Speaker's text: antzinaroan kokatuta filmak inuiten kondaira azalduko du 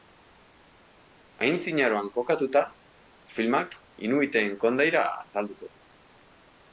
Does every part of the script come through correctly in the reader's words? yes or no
yes